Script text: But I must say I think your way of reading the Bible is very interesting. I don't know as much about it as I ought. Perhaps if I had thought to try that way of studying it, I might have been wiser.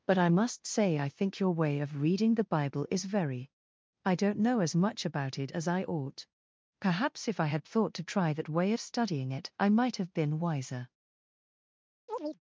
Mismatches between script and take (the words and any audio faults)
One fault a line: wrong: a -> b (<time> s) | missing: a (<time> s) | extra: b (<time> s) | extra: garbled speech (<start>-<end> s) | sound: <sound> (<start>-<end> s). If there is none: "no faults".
missing: interesting (3.5 s)
sound: chirp (12.1-12.4 s)